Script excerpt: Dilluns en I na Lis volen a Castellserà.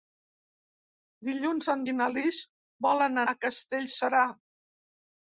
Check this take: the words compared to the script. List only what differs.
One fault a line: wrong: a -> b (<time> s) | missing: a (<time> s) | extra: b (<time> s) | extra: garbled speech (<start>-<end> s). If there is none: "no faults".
no faults